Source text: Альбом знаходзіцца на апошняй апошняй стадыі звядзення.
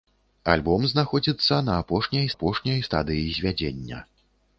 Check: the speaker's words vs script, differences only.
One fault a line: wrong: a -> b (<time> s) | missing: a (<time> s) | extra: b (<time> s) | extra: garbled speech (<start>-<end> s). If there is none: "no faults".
no faults